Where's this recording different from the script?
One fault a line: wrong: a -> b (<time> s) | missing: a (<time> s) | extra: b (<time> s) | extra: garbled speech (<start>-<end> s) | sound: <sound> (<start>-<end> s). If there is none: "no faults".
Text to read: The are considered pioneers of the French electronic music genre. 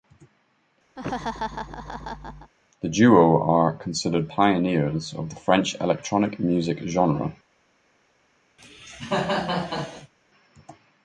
sound: laugh (1.0-2.5 s)
extra: duo (2.9 s)
sound: cough (8.6-10.1 s)